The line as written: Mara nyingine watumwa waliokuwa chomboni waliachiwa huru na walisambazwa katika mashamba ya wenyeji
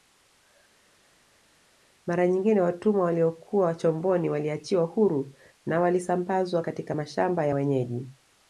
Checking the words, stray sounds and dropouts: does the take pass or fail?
pass